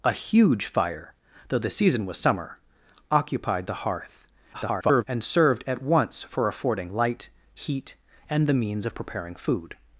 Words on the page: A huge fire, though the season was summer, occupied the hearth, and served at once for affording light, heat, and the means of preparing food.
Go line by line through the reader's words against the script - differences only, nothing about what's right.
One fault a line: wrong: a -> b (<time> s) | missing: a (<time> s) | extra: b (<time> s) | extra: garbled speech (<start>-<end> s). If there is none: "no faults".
extra: garbled speech (4.5-5.0 s)